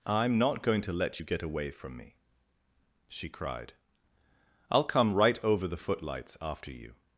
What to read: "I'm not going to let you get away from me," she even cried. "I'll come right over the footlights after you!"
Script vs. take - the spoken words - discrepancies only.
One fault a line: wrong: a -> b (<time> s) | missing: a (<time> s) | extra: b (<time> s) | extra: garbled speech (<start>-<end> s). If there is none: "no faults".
missing: even (3.3 s)